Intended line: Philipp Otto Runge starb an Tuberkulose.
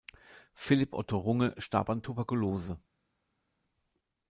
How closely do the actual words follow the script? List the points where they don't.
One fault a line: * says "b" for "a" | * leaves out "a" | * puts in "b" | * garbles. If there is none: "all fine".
all fine